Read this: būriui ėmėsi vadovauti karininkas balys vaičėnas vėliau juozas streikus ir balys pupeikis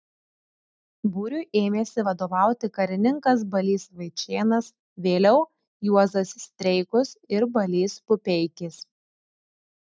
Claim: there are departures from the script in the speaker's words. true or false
false